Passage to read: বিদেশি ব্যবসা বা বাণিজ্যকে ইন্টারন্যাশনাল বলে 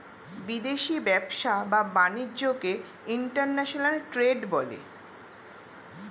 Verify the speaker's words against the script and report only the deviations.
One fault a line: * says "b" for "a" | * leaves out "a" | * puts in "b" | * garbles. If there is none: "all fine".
* puts in "ট্রেড"